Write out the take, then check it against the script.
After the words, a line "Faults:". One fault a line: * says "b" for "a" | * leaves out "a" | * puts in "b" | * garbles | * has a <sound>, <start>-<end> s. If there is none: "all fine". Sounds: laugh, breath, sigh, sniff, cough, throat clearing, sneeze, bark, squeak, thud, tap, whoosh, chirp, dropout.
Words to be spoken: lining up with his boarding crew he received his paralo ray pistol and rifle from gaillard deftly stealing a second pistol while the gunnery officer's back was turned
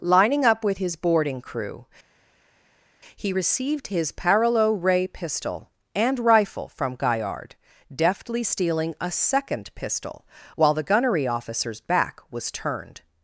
lining up with his boarding crew he received his paralo ray pistol and rifle from gaillard deftly stealing a second pistol while the gunnery officer's back was turned
Faults:
all fine